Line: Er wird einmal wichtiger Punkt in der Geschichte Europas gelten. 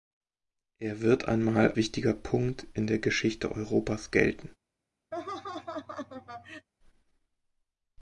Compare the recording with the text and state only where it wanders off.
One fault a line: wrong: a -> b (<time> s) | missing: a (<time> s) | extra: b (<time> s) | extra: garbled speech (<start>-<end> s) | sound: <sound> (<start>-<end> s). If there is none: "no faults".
sound: laugh (5.1-6.7 s)